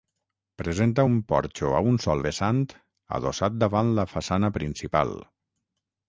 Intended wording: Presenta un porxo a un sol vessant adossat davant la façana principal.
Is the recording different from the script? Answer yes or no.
no